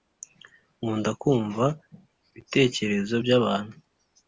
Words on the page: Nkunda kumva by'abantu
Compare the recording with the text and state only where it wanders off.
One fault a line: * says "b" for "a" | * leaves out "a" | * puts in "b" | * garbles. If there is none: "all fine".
* puts in "ibitekerezo"